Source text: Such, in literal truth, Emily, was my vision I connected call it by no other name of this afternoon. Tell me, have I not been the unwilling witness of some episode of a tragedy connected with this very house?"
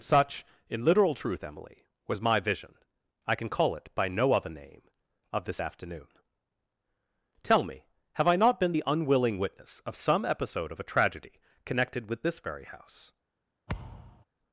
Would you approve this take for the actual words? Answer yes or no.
no